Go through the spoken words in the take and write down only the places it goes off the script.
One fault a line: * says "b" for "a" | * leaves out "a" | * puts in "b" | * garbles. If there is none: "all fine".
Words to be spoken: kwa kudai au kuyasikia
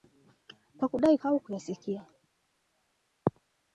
all fine